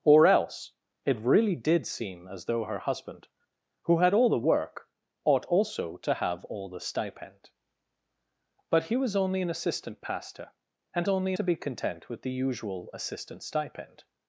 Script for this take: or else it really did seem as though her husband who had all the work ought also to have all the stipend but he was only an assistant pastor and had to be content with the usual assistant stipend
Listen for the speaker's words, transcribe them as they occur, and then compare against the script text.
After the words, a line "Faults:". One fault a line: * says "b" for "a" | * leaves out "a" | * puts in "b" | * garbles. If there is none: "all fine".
or else it really did seem as though her husband who had all the work ought also to have all the stipend but he was only an assistant pastor and only to be content with the usual assistant stipend
Faults:
* says "only" for "had"